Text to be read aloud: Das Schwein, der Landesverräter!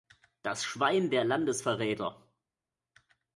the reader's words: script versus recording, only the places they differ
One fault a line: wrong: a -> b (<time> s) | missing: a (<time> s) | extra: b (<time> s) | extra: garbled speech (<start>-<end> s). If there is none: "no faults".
no faults